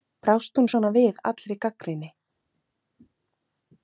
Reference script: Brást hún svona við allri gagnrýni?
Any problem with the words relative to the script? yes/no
no